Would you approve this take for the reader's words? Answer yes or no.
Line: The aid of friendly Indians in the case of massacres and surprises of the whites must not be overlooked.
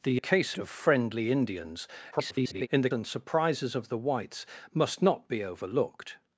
no